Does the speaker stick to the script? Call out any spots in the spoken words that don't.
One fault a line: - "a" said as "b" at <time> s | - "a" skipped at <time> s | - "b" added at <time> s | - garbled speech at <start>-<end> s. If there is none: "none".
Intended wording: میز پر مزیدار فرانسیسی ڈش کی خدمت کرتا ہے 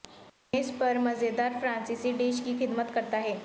none